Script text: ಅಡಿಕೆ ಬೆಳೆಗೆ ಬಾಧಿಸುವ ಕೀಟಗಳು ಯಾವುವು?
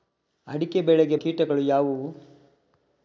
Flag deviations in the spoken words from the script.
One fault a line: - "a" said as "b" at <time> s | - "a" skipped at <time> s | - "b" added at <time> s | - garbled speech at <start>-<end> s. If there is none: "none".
- "ಬಾಧಿಸುವ" skipped at 1.1 s